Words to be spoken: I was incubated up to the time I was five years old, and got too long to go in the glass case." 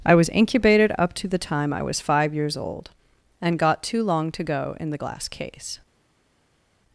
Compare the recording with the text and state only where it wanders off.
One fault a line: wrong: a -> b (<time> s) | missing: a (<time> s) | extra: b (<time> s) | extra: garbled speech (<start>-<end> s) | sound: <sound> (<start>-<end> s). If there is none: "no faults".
no faults